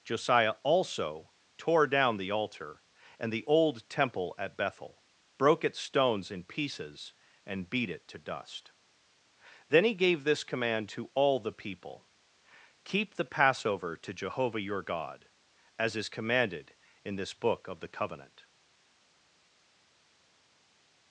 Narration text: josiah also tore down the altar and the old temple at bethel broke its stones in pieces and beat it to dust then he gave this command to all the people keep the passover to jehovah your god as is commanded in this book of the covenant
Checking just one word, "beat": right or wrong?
right